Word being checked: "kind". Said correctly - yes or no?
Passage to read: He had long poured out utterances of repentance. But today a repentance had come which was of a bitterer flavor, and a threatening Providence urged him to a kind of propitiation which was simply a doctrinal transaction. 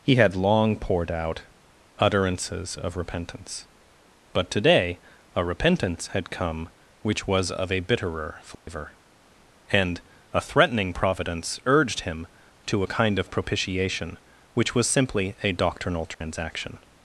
yes